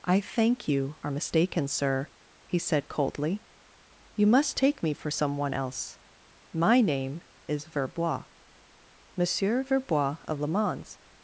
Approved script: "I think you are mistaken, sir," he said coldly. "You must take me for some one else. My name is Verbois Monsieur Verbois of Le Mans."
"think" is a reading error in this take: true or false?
true